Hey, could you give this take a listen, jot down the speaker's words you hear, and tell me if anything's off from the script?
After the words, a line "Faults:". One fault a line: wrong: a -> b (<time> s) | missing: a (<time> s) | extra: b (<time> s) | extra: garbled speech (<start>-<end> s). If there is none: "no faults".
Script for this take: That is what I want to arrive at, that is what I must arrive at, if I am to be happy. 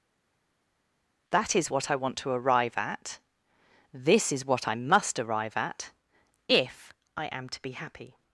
That is what I want to arrive at, this is what I must arrive at, if I am to be happy.
Faults:
wrong: that -> this (3.9 s)